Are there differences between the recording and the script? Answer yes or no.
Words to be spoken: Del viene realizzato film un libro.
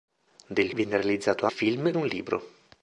no